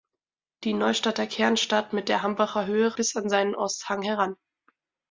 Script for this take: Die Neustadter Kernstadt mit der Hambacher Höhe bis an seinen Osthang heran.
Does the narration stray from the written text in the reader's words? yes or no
no